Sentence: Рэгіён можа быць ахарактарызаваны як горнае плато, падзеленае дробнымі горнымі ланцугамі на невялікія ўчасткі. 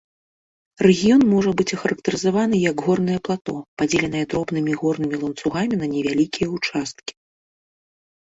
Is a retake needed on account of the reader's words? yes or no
no